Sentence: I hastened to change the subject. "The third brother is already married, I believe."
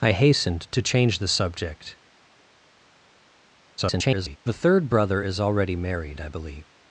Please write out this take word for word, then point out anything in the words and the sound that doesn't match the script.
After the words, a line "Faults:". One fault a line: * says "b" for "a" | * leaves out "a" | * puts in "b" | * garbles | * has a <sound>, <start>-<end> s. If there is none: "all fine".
I hastened to change the subject. [garbled] "The third brother is already married, I believe."
Faults:
* garbles